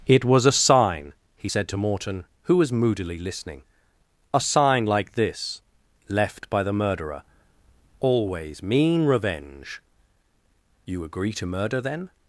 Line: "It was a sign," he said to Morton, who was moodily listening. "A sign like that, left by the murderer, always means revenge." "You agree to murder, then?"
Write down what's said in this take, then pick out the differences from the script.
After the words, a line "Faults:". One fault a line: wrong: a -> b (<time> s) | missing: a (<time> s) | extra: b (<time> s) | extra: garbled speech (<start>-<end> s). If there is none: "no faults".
"It was a sign," he said to Morton, who was moodily listening. "A sign like this, left by the murderer, always mean revenge." "You agree to murder, then?"
Faults:
wrong: that -> this (5.1 s)
wrong: means -> mean (8.6 s)